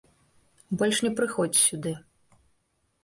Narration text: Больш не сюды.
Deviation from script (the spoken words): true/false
true